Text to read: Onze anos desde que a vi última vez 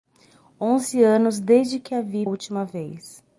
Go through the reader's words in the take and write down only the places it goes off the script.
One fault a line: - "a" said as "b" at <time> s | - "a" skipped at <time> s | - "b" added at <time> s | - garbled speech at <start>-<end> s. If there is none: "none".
none